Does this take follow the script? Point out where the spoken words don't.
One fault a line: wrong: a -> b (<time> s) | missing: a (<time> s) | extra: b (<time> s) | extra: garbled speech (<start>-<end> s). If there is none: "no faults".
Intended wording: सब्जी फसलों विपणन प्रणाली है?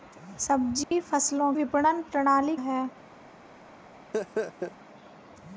no faults